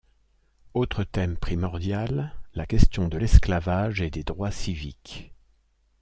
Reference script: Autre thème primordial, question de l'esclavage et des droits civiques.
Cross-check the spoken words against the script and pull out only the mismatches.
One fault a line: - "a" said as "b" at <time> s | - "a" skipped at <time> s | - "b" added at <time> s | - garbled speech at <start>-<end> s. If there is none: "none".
- "la" added at 2.5 s